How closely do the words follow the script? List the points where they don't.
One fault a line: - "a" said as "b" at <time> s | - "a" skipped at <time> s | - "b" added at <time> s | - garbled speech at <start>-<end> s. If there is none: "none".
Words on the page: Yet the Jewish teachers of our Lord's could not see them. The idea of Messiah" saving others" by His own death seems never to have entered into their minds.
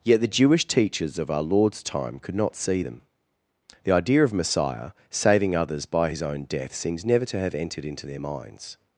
- "time" added at 1.8 s